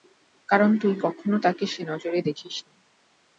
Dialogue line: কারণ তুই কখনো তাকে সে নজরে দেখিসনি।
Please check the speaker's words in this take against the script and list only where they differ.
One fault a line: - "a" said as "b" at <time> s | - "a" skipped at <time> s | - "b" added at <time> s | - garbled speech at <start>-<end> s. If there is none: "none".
none